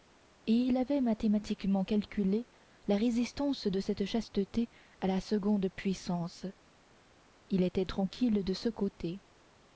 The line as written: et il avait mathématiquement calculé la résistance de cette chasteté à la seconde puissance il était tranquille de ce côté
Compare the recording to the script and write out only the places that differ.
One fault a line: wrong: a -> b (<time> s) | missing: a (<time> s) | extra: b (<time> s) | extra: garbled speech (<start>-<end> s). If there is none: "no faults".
no faults